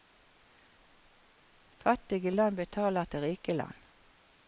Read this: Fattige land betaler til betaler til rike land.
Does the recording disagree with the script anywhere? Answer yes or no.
yes